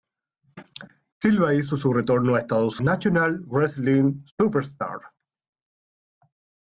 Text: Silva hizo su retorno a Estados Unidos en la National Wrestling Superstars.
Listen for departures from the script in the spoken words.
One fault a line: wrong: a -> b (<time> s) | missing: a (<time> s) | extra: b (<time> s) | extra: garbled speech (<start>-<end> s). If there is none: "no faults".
missing: Unidos en la (2.8 s)